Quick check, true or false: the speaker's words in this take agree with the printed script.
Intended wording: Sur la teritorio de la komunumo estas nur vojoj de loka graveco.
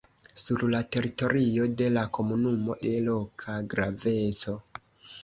false